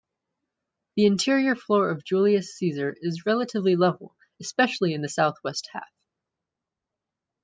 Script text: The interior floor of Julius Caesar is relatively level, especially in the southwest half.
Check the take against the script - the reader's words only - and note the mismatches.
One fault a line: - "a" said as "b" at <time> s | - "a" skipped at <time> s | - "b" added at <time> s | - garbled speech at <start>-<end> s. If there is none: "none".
none